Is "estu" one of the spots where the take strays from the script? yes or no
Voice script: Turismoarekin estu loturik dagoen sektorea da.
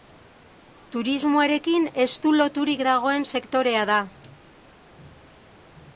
no